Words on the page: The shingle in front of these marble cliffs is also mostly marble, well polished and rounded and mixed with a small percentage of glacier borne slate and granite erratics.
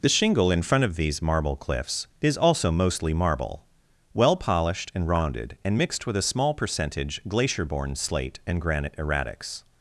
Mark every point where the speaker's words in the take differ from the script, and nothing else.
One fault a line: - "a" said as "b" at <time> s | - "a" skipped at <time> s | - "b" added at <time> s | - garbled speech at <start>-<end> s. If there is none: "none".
- "of" skipped at 7.2 s